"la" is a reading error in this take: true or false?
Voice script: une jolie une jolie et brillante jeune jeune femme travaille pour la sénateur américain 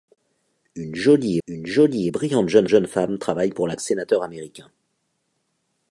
false